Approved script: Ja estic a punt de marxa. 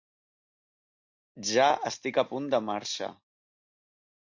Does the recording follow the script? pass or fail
pass